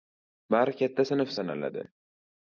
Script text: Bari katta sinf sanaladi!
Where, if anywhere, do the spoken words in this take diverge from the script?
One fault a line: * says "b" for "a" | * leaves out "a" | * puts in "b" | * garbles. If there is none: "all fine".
all fine